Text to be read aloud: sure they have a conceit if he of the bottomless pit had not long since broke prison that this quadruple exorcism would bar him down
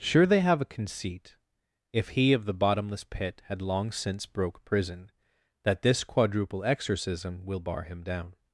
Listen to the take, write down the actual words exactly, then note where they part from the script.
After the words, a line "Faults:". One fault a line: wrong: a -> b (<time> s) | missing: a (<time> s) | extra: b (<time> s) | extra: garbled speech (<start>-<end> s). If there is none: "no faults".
sure they have a conceit if he of the bottomless pit had long since broke prison that this quadruple exorcism will bar him down
Faults:
missing: not (3.6 s)
wrong: would -> will (7.4 s)